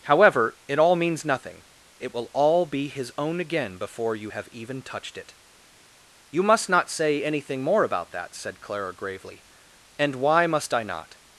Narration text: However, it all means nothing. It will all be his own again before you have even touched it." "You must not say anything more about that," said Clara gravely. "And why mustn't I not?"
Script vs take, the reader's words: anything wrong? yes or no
yes